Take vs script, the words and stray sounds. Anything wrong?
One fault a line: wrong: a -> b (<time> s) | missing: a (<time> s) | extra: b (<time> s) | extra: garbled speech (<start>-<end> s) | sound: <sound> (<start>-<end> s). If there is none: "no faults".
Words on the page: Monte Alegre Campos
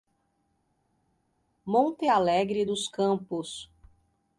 extra: dos (2.6 s)